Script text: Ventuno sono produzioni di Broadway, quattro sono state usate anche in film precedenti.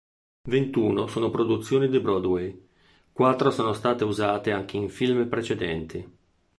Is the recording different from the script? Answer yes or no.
no